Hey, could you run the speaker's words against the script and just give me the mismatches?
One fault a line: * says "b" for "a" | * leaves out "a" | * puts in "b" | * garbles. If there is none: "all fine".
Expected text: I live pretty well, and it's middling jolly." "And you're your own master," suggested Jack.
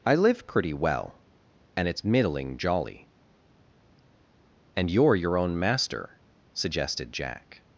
all fine